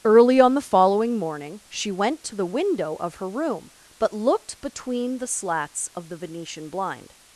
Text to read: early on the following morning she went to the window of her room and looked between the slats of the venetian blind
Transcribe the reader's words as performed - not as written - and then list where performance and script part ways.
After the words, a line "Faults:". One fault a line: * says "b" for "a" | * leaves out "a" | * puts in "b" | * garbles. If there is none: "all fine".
early on the following morning she went to the window of her room but looked between the slats of the venetian blind
Faults:
* says "but" for "and"